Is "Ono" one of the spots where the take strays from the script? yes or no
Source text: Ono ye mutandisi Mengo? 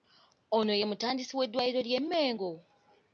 no